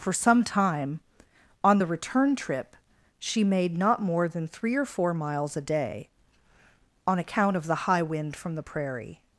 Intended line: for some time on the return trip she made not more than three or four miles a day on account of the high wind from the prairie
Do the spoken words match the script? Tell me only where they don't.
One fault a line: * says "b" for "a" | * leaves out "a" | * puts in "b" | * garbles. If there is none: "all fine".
all fine